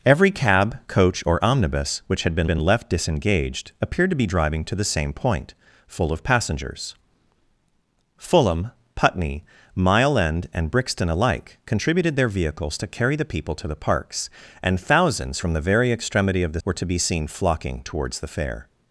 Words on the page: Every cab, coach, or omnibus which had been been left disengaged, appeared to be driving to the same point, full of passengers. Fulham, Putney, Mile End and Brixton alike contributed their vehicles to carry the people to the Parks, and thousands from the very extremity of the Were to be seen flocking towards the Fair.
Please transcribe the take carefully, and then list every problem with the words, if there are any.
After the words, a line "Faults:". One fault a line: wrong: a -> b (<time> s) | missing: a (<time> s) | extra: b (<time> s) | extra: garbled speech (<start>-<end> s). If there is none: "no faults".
Every cab, coach, or omnibus which had been been left disengaged, appeared to be driving to the same point, full of passengers. Fulham, Putney, Mile End and Brixton alike contributed their vehicles to carry the people to the Parks, and thousands from the very extremity of the Were to be seen flocking towards the Fair.
Faults:
no faults